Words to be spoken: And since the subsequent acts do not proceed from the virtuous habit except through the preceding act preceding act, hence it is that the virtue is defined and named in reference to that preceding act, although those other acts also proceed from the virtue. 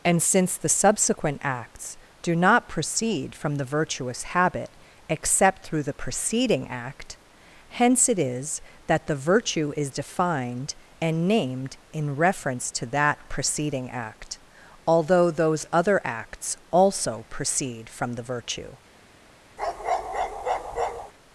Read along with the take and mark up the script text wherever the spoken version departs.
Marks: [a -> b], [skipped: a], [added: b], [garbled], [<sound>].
And since the subsequent acts do not proceed from the virtuous habit except through the preceding act [skipped: preceding act,] hence it is that the virtue is defined and named in reference to that preceding act, although those other acts also proceed from the virtue. [bark]